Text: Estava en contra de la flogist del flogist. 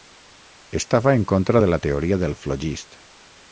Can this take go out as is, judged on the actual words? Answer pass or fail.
fail